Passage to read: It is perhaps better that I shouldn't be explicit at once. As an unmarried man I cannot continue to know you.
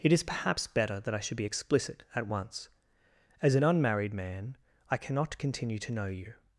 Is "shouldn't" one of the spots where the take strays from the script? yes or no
yes